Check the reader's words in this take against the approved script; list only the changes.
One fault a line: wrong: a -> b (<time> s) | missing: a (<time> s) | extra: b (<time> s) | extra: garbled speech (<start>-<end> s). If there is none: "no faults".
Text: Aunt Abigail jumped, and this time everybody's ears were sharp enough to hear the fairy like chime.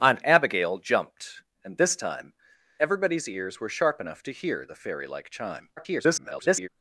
extra: garbled speech (5.8-6.7 s)